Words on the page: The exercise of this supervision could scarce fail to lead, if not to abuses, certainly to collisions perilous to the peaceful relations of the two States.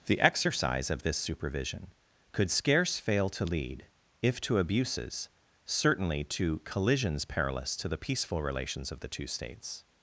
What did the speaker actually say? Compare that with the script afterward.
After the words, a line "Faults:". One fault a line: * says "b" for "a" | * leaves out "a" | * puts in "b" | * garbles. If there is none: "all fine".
The exercise of this supervision could scarce fail to lead, if to abuses, certainly to collisions perilous to the peaceful relations of the two States.
Faults:
* leaves out "not"